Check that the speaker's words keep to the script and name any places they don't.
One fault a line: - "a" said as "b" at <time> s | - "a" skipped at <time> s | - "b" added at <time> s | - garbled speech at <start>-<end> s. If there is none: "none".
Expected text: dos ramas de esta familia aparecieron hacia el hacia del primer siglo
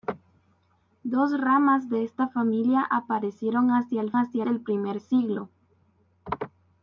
none